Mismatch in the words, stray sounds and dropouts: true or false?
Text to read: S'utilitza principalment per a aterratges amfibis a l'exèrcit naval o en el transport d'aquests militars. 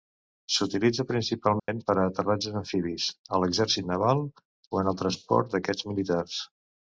true